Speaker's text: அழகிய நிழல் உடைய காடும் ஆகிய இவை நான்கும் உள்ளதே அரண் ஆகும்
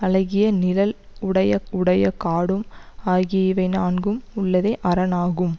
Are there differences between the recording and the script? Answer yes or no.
yes